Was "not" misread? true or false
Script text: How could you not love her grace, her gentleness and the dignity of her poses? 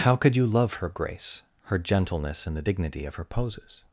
true